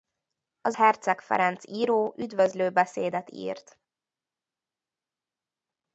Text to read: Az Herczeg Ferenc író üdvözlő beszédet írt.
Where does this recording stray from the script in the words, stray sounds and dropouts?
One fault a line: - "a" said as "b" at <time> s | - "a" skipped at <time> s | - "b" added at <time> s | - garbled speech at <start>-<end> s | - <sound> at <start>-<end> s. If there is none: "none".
none